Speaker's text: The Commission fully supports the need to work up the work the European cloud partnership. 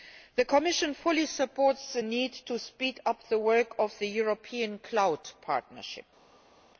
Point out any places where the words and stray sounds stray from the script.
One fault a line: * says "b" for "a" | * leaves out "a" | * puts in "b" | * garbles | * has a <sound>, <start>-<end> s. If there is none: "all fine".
* says "speed" for "work"
* puts in "of"